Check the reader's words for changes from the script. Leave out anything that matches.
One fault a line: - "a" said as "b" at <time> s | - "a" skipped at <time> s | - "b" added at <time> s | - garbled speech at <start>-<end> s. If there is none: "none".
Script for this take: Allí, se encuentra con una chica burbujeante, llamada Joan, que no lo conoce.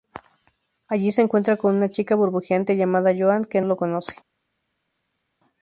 - "no" skipped at 3.6 s